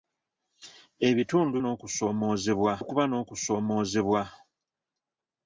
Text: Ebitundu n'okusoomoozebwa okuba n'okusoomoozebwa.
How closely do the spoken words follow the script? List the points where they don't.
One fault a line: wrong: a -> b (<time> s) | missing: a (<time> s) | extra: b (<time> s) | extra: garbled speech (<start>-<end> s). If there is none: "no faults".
no faults